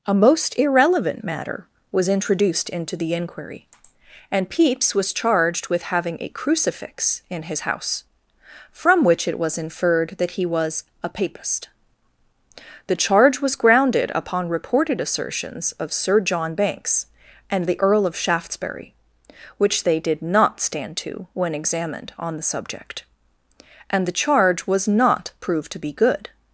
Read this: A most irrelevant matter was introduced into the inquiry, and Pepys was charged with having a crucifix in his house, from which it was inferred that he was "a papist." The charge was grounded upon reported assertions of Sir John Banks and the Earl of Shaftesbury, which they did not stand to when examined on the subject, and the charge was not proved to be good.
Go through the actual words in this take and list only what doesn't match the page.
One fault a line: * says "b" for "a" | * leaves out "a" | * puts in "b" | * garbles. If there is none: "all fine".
all fine